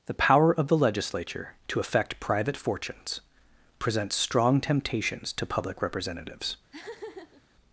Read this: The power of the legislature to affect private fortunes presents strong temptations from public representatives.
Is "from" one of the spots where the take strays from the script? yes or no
yes